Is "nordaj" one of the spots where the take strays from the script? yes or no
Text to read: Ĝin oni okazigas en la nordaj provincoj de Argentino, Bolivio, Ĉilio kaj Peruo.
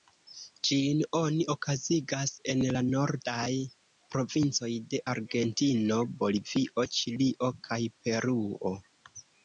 no